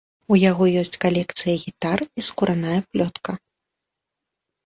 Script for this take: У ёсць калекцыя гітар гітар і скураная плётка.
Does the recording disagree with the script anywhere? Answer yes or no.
yes